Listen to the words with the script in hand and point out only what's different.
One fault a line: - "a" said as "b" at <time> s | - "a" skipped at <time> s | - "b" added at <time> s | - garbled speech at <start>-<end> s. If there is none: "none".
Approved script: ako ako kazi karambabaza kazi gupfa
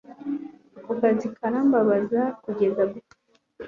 - "ako" skipped at 0.9 s
- "kazi" said as "kugeza" at 2.4 s